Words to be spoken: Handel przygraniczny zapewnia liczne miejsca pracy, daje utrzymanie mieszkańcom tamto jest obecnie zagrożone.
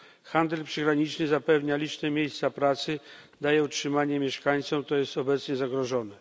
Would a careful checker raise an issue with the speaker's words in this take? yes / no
yes